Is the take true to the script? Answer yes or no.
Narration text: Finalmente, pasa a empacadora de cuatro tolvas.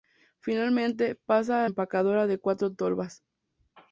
yes